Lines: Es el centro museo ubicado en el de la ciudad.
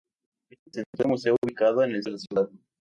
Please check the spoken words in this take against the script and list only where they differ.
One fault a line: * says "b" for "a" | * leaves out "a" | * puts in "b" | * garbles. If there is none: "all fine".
all fine